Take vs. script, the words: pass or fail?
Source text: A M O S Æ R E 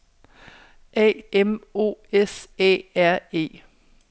pass